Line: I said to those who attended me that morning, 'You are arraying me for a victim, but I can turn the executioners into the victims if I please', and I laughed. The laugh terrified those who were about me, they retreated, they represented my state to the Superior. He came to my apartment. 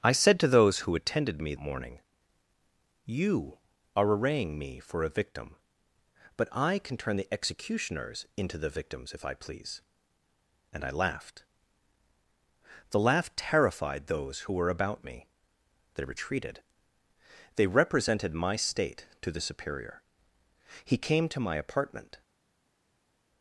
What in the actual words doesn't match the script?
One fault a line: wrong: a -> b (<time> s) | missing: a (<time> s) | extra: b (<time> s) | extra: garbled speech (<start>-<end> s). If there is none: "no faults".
missing: that (1.5 s)